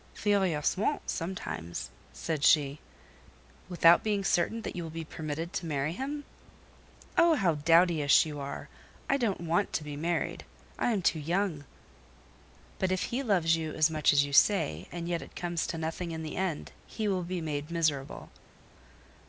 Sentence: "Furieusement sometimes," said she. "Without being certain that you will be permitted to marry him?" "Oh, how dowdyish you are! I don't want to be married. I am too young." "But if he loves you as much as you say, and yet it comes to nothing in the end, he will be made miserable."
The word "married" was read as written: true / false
true